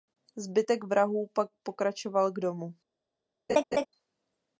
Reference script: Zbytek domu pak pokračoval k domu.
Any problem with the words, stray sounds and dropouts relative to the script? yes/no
yes